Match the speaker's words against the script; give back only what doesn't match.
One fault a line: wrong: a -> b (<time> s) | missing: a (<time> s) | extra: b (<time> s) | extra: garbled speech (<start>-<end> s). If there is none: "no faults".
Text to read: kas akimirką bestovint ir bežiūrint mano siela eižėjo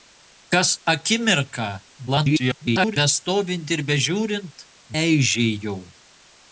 extra: garbled speech (2.1-3.0 s)
missing: mano siela (4.7 s)